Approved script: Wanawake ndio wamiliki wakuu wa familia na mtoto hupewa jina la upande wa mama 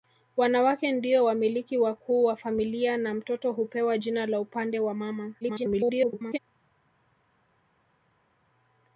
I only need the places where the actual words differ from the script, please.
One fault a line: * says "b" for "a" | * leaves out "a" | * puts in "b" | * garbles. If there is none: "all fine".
* garbles